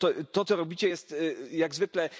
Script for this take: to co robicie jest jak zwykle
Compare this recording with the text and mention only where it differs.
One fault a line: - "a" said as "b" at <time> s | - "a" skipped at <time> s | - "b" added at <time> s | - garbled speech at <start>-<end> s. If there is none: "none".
none